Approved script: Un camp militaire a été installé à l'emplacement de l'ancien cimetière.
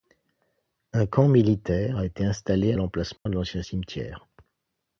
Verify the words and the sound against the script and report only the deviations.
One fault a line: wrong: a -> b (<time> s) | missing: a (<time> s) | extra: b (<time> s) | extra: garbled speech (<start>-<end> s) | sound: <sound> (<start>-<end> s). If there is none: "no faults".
sound: dropout (3.2-3.3 s)